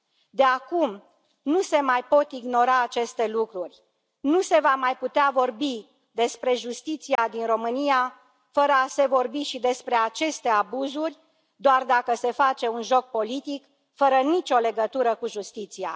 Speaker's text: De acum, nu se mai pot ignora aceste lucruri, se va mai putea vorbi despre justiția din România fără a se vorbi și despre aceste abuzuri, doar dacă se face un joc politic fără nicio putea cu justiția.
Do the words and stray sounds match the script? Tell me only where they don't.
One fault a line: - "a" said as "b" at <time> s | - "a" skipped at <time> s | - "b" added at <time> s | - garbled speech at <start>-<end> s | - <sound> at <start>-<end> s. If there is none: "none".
- "nu" added at 4.2 s
- dropout at 7.2-7.2 s
- "putea" said as "legătură" at 14.6 s